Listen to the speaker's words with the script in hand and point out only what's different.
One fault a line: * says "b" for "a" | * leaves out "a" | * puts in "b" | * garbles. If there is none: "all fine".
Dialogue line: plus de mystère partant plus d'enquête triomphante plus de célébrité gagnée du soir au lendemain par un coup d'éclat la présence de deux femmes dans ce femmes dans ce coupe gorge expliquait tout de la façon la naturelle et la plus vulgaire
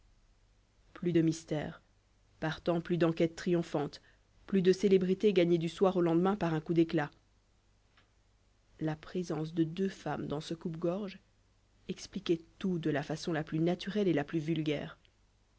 * leaves out "femmes dans ce"
* puts in "plus"